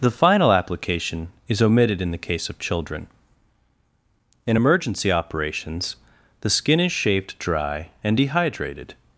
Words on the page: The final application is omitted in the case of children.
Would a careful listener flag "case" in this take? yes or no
no